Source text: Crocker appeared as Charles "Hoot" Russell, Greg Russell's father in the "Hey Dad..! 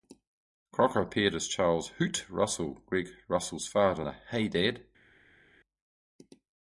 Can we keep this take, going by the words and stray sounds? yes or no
no